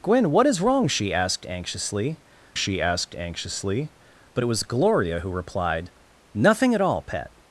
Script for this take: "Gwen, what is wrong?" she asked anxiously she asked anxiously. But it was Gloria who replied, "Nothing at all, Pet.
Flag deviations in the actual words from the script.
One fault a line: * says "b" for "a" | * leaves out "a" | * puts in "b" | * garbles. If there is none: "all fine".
all fine